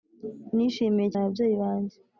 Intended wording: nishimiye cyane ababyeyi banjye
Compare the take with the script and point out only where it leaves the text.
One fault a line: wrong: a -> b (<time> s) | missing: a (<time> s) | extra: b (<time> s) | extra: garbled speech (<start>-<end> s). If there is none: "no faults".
missing: cyane (1.1 s)